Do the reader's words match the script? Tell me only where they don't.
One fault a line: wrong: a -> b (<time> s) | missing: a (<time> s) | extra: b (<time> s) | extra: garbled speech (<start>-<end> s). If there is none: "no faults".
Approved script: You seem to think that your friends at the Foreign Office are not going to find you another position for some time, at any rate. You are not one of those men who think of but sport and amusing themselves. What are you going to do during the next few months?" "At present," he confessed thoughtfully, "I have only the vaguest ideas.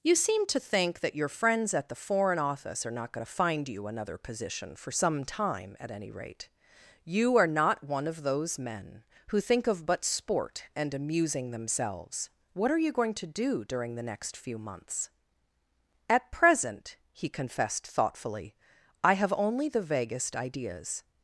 no faults